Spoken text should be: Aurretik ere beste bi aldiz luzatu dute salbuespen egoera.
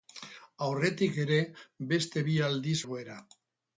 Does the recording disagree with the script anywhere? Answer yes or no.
yes